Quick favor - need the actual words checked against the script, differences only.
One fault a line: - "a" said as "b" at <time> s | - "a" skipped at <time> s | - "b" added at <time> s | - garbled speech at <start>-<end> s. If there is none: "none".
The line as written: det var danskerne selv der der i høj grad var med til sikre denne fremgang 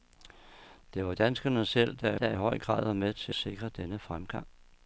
none